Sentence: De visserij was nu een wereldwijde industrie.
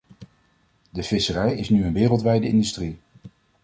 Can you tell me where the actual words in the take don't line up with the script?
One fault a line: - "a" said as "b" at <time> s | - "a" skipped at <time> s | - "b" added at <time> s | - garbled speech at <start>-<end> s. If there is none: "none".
- "was" said as "is" at 1.5 s